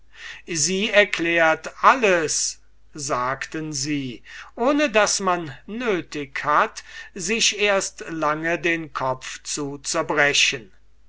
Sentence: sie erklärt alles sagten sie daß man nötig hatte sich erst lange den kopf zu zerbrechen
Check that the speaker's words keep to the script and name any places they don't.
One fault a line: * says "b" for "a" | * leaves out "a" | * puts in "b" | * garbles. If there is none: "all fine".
* puts in "ohne"
* says "hat" for "hatte"